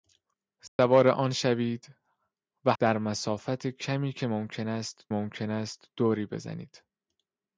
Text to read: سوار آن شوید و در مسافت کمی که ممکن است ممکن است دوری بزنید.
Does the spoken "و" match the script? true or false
true